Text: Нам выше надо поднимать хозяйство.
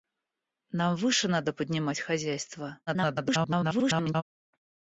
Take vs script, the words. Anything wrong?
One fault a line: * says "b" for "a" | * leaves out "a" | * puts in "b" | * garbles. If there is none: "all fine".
* garbles